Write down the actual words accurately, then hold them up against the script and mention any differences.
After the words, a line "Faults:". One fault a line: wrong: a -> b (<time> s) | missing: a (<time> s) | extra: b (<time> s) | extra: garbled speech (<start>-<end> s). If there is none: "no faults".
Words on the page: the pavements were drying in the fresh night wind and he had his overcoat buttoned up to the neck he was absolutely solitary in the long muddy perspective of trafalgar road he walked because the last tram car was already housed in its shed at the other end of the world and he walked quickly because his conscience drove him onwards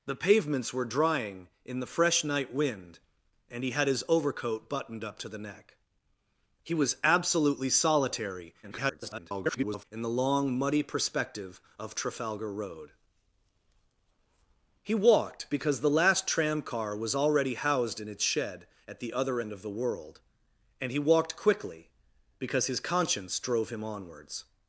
the pavements were drying in the fresh night wind and he had his overcoat buttoned up to the neck he was absolutely solitary [garbled] in the long muddy perspective of trafalgar road he walked because the last tram car was already housed in its shed at the other end of the world and he walked quickly because his conscience drove him onwards
Faults:
extra: garbled speech (8.6-9.8 s)